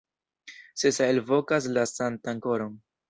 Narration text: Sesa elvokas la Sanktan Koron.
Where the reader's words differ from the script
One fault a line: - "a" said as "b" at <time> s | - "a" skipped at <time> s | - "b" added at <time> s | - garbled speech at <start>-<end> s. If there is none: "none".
none